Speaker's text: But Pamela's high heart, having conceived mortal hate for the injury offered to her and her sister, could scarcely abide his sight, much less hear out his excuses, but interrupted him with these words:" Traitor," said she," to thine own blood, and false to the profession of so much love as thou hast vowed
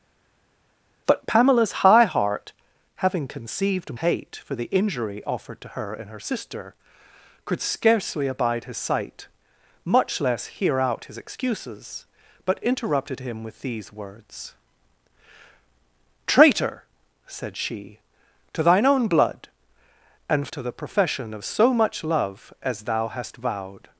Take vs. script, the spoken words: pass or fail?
fail